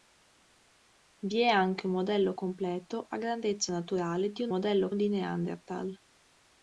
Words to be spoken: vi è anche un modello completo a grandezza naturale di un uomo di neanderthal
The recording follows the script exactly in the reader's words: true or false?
false